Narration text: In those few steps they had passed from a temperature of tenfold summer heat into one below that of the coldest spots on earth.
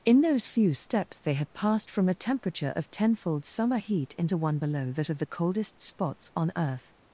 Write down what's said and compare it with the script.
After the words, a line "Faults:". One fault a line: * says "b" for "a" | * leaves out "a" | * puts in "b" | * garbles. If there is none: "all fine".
In those few steps they had passed from a temperature of tenfold summer heat into one below that of the coldest spots on earth.
Faults:
all fine